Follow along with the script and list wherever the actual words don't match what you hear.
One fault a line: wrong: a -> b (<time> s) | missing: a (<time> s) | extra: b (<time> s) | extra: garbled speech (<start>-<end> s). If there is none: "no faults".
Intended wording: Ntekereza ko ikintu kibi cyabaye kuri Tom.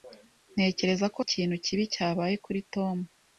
no faults